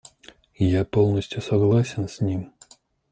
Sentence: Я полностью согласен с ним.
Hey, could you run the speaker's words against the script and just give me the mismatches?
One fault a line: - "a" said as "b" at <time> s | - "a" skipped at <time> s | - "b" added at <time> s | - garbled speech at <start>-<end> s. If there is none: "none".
none